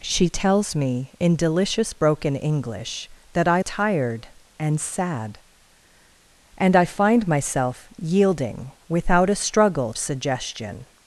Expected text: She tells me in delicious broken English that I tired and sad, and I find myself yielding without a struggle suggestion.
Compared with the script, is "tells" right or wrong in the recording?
right